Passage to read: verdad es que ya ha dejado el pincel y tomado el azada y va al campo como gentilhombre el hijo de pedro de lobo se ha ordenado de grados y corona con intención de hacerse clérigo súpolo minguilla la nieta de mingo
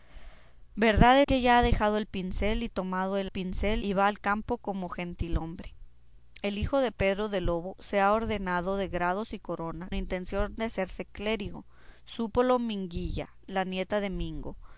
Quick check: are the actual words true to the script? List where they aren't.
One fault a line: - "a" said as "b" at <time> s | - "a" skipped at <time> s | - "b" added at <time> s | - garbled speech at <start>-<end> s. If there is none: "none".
- "es" skipped at 1.2 s
- "azada" said as "pincel" at 3.3 s
- "con" skipped at 9.9 s